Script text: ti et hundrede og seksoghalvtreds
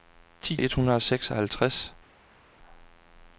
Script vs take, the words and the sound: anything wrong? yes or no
no